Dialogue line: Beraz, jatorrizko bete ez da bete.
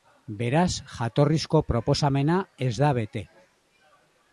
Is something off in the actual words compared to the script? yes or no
yes